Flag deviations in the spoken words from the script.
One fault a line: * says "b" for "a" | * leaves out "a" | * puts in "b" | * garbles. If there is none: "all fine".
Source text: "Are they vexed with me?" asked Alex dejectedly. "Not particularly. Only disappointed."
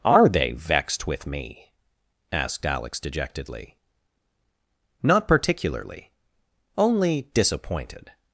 all fine